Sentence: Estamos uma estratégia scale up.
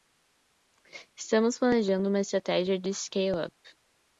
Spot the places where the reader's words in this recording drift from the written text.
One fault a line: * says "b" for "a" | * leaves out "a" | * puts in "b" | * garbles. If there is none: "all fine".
* puts in "planejando"
* puts in "de"